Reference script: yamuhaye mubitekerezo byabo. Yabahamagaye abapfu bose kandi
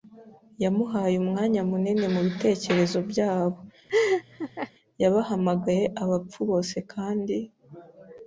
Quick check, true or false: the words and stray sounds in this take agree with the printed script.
false